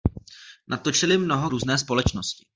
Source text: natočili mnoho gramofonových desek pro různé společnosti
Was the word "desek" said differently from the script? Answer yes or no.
yes